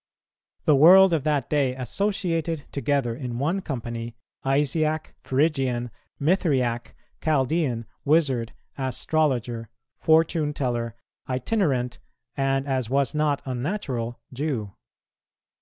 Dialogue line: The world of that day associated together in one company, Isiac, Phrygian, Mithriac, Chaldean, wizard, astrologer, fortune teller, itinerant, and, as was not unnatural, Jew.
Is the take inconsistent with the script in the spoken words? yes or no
no